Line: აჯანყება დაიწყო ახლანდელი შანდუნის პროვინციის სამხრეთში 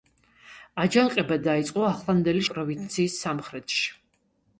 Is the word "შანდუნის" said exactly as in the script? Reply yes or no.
no